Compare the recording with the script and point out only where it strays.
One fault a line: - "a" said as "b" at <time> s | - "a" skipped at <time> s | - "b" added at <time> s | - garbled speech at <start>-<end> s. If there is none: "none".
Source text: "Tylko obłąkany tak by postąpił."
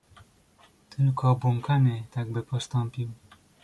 none